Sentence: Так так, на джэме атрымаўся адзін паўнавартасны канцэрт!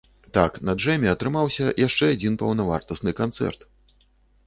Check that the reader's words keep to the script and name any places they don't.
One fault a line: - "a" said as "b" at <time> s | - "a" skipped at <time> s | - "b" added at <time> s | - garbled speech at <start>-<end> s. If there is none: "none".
- "так" skipped at 0.6 s
- "яшчэ" added at 1.9 s